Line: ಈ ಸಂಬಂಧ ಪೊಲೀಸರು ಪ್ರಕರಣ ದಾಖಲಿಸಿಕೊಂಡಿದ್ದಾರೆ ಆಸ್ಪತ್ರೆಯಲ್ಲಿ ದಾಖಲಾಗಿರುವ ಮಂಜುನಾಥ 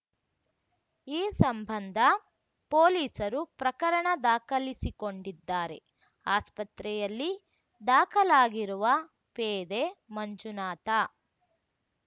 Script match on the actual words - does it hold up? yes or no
no